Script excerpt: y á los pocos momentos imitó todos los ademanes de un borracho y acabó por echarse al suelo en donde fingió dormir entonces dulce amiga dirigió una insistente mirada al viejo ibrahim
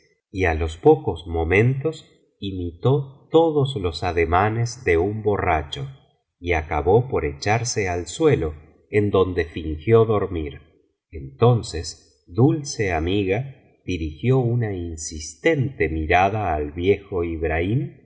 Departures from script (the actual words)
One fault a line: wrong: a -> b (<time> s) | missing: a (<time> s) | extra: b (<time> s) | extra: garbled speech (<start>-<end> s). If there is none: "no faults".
no faults